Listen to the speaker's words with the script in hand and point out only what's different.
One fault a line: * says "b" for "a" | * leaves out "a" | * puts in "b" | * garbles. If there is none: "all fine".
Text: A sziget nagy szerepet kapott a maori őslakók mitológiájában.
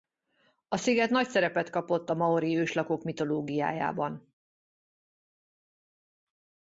all fine